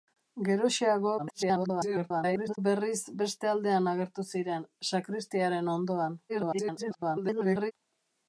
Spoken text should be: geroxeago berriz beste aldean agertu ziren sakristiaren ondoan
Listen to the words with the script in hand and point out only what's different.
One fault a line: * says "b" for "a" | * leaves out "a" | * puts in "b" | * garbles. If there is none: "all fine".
* garbles
* garbles